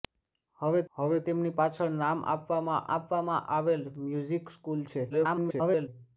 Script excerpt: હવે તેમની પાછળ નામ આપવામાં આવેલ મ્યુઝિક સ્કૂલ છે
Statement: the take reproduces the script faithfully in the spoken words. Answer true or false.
false